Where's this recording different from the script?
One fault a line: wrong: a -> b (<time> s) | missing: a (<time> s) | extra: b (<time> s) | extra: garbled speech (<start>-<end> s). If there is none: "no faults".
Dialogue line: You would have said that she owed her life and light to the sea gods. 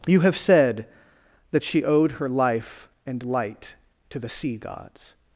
missing: would (0.2 s)